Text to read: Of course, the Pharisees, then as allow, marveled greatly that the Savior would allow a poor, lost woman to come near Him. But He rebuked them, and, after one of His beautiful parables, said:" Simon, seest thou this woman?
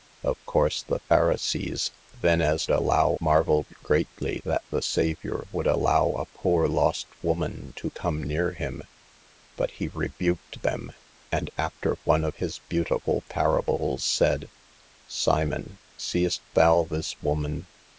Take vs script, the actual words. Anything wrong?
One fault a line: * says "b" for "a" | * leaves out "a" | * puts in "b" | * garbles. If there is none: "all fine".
all fine